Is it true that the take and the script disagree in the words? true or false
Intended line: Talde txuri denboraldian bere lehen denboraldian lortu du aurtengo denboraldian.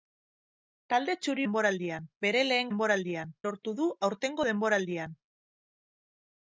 false